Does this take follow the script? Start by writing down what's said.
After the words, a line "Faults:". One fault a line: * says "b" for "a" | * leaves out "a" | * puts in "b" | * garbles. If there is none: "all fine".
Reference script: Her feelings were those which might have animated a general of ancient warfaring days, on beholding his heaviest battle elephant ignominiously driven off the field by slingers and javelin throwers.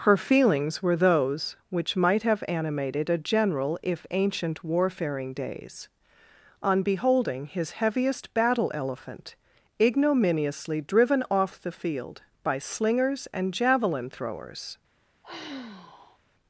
Her feelings were those which might have animated a general if ancient warfaring days, on beholding his heaviest battle elephant ignominiously driven off the field by slingers and javelin throwers.
Faults:
* says "if" for "of"